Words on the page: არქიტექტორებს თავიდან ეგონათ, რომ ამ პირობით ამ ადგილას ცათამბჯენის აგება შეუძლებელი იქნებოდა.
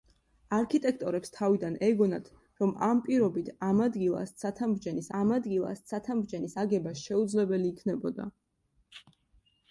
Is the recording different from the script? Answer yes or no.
yes